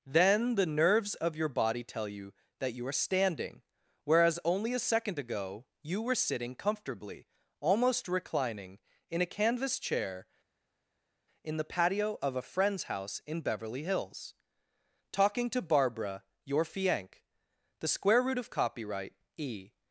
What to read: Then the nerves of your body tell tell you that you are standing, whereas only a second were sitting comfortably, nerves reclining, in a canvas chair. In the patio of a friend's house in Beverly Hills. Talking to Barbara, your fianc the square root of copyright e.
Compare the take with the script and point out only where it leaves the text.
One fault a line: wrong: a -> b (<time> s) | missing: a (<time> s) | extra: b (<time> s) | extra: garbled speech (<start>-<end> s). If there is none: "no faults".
missing: tell (2.1 s)
extra: ago you (5.2 s)
wrong: nerves -> almost (7.6 s)